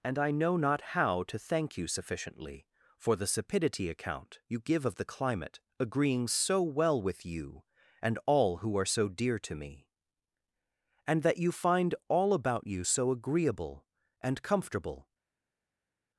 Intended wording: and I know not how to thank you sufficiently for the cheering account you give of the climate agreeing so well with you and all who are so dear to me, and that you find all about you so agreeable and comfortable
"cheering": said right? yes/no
no